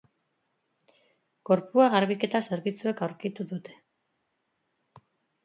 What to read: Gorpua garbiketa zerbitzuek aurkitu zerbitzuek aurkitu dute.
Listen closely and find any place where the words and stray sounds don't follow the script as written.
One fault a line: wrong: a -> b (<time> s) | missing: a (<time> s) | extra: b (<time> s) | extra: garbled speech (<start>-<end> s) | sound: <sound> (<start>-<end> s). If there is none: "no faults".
missing: zerbitzuek aurkitu (3.5 s)